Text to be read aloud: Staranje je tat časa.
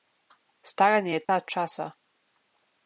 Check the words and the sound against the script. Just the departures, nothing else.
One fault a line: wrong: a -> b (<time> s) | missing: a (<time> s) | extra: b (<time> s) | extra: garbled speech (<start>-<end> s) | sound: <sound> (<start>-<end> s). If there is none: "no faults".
sound: dropout (1.3-1.3 s)